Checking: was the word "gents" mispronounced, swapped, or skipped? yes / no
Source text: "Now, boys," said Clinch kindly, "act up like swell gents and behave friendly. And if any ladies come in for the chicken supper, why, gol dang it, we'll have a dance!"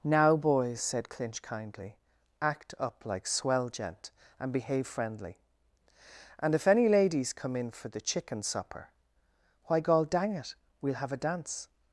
yes